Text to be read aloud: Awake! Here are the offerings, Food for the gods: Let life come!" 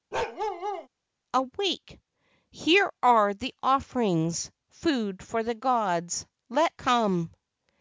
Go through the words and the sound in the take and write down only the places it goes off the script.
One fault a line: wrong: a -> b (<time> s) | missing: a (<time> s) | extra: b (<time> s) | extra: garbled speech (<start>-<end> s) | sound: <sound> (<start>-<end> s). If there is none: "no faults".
sound: bark (0.1-0.9 s)
missing: life (6.7 s)